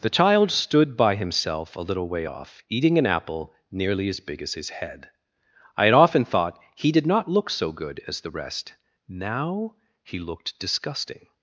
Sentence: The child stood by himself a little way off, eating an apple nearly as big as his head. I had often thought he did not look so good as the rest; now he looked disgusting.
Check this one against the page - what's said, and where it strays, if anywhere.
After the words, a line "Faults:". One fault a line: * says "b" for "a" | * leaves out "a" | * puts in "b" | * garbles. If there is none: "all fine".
The child stood by himself a little way off, eating an apple nearly as big as his head. I had often thought he did not look so good as the rest; now he looked disgusting.
Faults:
all fine